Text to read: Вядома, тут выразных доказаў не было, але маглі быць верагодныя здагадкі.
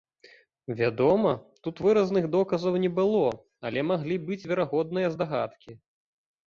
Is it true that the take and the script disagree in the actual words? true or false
false